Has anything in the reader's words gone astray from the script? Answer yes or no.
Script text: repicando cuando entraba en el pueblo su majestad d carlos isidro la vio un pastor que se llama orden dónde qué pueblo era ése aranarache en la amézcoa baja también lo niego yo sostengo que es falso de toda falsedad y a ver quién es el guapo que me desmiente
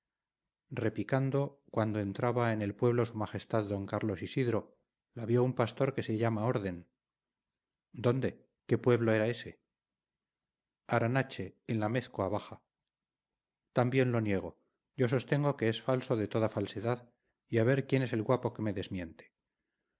no